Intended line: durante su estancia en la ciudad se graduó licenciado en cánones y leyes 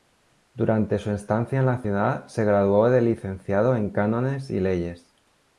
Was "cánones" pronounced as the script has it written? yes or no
yes